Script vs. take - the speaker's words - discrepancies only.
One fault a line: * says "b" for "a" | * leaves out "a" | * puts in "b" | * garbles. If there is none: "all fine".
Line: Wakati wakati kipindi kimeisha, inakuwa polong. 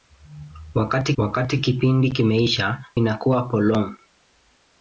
all fine